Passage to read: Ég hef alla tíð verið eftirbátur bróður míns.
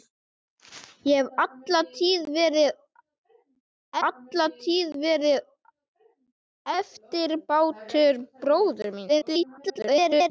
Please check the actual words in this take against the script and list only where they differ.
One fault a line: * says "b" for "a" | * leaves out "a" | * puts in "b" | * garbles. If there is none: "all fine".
* puts in "alla tíð verið"
* garbles